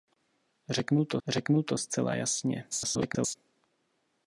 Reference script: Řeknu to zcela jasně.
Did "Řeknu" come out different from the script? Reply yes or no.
no